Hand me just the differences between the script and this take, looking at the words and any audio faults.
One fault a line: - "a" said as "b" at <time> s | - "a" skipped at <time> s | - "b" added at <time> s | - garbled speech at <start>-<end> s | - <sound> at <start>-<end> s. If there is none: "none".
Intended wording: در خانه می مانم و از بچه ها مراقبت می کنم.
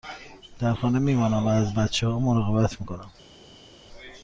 none